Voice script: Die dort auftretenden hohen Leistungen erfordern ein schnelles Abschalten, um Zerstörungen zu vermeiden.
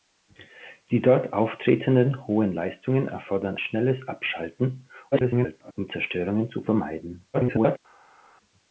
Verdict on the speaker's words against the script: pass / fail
fail